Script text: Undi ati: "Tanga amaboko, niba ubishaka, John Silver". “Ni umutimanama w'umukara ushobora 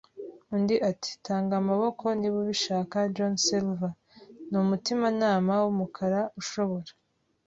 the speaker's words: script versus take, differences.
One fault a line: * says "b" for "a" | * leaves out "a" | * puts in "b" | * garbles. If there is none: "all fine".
all fine